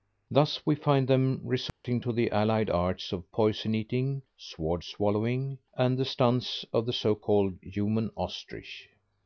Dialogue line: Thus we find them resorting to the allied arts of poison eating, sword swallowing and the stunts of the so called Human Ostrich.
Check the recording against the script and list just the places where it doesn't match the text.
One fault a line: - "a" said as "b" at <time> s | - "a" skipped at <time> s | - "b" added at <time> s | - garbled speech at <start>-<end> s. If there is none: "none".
none